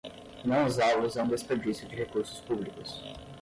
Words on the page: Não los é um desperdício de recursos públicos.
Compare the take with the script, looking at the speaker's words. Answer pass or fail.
fail